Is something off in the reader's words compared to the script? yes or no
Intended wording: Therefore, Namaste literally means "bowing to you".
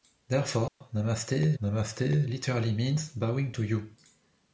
yes